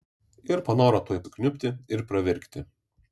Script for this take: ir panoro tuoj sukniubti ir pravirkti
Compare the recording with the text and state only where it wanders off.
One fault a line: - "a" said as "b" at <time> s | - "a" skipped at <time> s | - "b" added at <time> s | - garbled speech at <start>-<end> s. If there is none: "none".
none